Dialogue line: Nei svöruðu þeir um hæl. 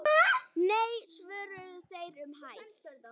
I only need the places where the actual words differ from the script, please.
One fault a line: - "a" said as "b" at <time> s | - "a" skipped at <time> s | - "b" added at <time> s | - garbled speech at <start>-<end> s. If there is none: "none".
none